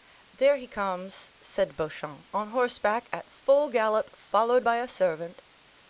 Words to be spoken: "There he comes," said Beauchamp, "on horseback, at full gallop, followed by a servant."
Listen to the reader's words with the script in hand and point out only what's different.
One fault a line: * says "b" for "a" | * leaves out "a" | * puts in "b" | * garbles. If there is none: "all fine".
all fine